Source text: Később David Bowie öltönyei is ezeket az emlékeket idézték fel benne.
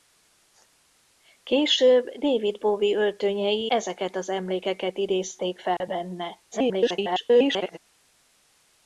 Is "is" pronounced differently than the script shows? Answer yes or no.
yes